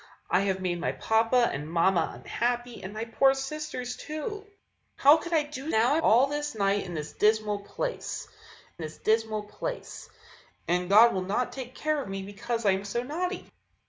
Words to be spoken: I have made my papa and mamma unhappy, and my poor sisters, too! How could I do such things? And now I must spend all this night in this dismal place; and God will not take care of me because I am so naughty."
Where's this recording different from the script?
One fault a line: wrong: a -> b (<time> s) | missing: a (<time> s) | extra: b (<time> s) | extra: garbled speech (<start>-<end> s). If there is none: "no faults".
missing: such things And (5.7 s)
missing: must spend (6.0 s)
extra: this dismal place (8.8 s)